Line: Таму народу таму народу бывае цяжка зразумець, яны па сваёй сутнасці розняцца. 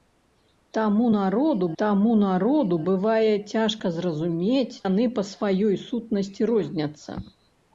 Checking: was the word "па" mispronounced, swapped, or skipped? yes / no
no